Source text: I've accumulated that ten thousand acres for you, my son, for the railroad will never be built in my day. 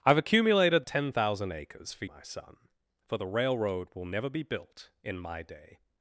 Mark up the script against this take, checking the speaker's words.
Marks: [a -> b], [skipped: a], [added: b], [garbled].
I've accumulated [skipped: that] ten thousand acres for [skipped: you,] my son, for the railroad will never be built in my day.